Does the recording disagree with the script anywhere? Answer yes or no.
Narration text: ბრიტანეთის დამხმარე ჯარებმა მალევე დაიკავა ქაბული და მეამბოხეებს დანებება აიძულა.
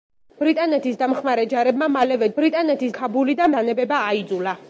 yes